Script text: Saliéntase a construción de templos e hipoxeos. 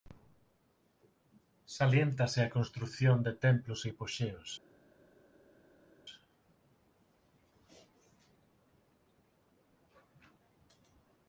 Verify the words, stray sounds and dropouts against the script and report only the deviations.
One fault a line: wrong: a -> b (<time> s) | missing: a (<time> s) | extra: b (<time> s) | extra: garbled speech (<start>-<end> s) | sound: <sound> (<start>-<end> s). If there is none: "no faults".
no faults